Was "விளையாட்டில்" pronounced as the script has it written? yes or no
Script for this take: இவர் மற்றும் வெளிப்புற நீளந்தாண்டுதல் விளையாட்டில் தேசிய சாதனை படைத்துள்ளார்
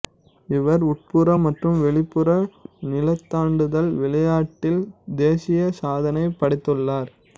yes